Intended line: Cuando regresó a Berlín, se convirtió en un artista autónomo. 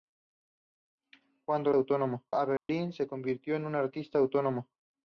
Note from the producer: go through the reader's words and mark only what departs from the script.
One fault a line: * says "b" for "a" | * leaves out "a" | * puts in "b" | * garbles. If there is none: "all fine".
* says "autónomo" for "regresó"